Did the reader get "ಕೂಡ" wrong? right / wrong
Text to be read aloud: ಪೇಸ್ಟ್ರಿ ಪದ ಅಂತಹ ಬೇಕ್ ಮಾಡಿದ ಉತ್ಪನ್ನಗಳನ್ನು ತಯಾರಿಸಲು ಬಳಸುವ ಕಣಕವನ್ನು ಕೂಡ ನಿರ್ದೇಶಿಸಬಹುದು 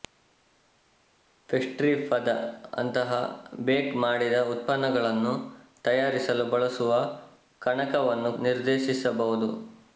wrong